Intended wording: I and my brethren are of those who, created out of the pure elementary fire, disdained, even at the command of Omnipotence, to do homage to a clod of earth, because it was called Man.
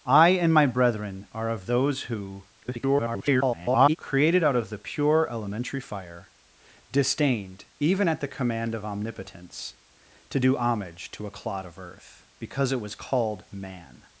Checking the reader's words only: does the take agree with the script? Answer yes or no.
no